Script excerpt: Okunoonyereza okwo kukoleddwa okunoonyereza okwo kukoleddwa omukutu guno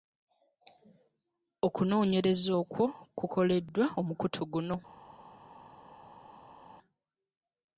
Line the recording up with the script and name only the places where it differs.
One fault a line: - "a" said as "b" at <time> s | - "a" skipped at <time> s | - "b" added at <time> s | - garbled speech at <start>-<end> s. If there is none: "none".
- "okunoonyereza okwo kukoleddwa" skipped at 3.8 s